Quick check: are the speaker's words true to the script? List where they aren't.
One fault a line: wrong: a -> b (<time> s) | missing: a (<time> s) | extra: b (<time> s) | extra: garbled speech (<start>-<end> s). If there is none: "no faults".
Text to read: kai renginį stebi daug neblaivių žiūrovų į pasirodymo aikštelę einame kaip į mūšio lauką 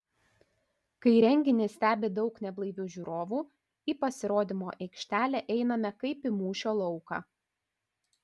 no faults